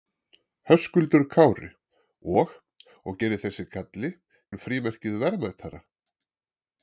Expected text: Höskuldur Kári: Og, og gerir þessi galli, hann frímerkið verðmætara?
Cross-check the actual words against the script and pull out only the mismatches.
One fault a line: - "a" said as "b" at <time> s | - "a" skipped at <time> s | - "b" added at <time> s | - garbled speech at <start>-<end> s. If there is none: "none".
none